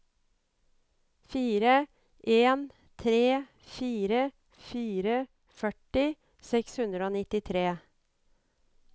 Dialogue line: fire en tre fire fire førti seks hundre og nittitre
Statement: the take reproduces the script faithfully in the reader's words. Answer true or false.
true